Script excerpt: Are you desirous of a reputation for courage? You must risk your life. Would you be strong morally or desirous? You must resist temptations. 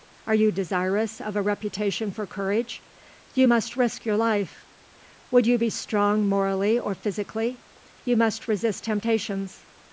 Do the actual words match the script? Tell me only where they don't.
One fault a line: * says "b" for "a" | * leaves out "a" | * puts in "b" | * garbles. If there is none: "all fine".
* says "physically" for "desirous"